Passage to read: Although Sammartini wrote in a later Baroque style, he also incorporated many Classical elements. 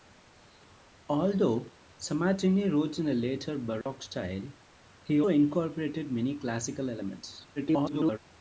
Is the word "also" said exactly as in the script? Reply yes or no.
no